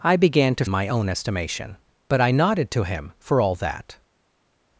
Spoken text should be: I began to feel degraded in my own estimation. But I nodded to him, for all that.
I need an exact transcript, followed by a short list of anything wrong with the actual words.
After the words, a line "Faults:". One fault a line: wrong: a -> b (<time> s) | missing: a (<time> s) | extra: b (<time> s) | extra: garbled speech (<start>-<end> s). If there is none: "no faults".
I began to my own estimation. But I nodded to him, for all that.
Faults:
missing: feel degraded in (0.7 s)